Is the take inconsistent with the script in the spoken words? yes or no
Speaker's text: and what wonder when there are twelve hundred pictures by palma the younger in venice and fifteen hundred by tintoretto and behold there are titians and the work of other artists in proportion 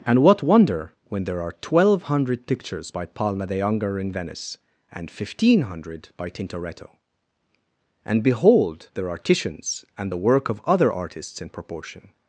no